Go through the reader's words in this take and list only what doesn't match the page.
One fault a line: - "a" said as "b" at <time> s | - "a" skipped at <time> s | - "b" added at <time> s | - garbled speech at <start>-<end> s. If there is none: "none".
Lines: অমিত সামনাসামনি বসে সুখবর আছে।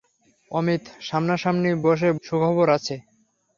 none